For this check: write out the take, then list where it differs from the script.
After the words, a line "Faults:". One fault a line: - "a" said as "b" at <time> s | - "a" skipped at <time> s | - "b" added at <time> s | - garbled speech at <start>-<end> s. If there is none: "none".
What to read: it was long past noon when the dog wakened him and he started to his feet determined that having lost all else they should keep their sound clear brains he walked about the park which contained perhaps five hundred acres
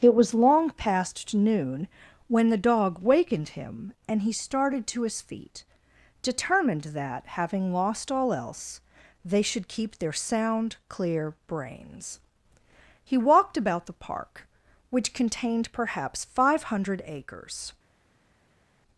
it was long past noon when the dog wakened him and he started to his feet determined that having lost all else they should keep their sound clear brains he walked about the park which contained perhaps five hundred acres
Faults:
none